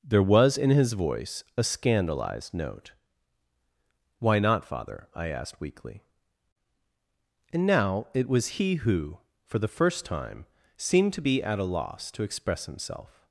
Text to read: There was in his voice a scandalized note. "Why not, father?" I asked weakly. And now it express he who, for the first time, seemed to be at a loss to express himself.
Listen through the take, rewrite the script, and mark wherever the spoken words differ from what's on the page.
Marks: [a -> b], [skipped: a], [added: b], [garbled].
There was in his voice a scandalized note. "Why not, father?" I asked weakly. And now it [express -> was] he who, for the first time, seemed to be at a loss to express himself.